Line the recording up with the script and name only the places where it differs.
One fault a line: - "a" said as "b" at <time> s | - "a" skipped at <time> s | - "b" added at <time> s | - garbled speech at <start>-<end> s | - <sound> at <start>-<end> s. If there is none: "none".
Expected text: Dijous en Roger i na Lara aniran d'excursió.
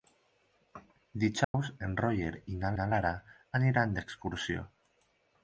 - dropout at 1.4-1.5 s
- "na" added at 2.8 s